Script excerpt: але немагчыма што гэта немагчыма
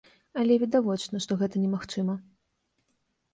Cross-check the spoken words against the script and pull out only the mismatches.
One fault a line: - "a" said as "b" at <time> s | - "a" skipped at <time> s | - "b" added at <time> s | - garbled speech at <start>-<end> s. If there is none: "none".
- "немагчыма" said as "відавочна" at 0.6 s